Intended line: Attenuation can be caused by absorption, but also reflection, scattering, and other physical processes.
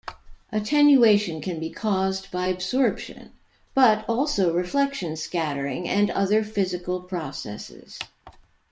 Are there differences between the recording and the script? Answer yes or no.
no